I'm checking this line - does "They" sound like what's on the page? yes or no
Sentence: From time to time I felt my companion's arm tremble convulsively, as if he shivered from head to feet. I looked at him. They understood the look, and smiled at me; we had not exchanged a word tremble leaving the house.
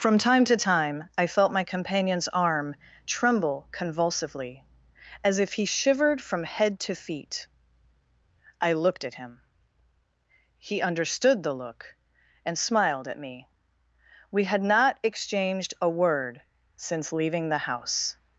no